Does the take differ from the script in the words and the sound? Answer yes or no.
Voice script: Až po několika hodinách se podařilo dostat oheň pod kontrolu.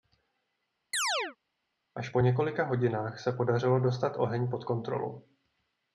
yes